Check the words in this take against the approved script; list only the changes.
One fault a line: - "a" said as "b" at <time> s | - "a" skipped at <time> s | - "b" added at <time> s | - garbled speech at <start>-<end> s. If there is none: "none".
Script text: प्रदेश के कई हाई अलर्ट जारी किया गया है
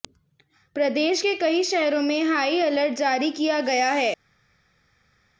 - "शहरों में" added at 1.6 s